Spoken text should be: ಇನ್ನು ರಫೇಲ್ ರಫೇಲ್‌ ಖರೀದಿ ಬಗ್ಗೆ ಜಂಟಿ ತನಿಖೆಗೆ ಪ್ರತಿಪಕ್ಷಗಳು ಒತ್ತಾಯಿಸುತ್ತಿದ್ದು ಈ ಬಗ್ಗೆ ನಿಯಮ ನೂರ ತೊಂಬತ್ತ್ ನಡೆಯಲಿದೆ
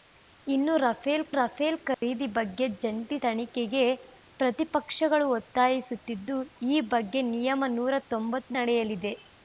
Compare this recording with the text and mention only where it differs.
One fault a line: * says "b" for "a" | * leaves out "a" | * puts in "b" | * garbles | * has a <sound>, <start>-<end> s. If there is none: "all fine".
* has a dropout, 1.9-2.0 s